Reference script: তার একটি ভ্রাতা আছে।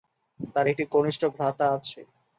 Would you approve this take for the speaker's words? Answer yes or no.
no